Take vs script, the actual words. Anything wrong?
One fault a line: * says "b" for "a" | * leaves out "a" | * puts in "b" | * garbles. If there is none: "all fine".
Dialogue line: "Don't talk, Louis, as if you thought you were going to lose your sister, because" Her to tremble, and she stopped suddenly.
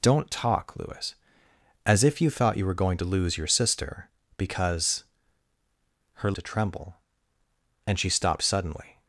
all fine